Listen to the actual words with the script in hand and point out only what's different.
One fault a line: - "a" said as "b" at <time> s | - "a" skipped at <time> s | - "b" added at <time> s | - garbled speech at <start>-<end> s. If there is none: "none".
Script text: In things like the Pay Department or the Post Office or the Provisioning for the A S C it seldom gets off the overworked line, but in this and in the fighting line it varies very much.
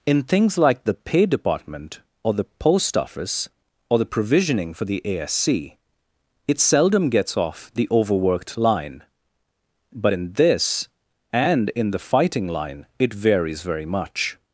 none